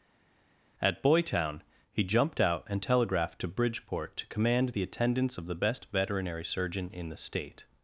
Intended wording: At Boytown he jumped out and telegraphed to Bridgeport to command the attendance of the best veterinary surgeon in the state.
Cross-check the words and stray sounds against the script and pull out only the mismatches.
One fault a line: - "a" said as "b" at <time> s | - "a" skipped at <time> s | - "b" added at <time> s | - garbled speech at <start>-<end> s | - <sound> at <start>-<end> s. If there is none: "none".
none